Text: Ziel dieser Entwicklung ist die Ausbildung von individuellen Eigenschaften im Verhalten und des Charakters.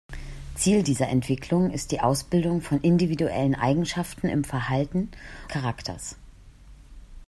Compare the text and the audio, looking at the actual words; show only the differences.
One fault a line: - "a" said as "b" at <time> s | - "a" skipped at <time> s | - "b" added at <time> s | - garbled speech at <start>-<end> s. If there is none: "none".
- "und des" skipped at 5.1 s